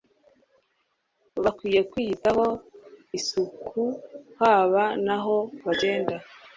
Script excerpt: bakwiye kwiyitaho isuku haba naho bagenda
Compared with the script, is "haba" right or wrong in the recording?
right